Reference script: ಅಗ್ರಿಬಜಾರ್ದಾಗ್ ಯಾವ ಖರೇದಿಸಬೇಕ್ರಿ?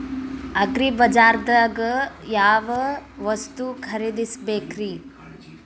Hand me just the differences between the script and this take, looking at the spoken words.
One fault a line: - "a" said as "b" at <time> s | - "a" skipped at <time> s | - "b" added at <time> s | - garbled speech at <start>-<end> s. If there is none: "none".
- "ವಸ್ತು" added at 3.2 s